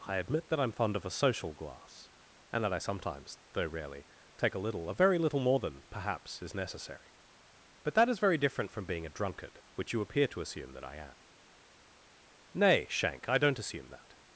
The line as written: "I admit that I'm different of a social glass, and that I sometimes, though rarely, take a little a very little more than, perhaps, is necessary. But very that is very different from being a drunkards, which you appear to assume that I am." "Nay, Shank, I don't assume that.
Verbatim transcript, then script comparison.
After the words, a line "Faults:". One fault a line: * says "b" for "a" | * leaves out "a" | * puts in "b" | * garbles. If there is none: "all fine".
"I admit that I'm fond of a social glass, and that I sometimes, though rarely, take a little a very little more than, perhaps, is necessary. But that is very different from being a drunkard, which you appear to assume that I am." "Nay, Shank, I don't assume that.
Faults:
* says "fond" for "different"
* leaves out "very"
* says "drunkard" for "drunkards"